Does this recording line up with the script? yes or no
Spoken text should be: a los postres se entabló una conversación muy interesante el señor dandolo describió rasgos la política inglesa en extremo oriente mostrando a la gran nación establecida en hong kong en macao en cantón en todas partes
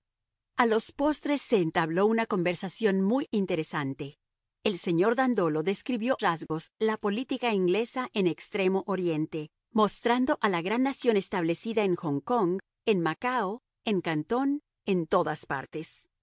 yes